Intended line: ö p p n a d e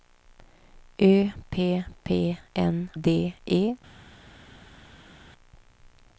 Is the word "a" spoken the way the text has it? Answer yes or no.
no